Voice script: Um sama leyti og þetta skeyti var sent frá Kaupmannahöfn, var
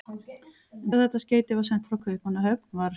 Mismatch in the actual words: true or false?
true